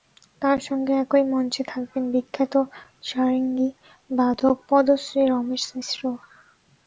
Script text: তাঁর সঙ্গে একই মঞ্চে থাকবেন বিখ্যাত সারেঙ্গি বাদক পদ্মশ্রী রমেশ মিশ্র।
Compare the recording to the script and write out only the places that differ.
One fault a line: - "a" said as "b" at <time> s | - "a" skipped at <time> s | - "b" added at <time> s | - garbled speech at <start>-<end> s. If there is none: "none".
none